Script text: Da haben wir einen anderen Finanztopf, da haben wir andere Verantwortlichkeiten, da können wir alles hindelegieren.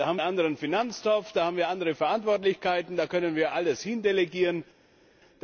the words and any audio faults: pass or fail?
fail